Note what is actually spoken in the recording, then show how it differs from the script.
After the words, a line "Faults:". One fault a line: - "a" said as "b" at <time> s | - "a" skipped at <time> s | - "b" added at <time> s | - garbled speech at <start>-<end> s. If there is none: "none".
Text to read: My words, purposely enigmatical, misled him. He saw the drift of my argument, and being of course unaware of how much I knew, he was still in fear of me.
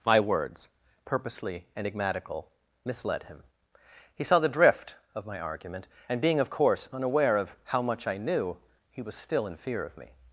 My words, purposely enigmatical, misled him. He saw the drift of my argument, and being of course unaware of how much I knew, he was still in fear of me.
Faults:
none